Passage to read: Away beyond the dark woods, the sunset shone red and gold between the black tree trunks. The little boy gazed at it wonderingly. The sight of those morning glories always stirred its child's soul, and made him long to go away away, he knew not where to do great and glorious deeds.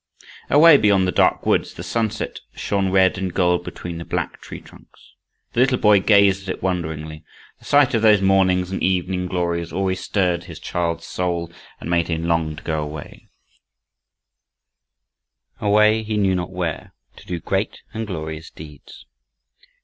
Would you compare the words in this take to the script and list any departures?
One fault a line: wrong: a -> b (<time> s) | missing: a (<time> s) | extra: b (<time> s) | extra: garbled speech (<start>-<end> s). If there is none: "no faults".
extra: and evening (8.7 s)
wrong: its -> his (10.4 s)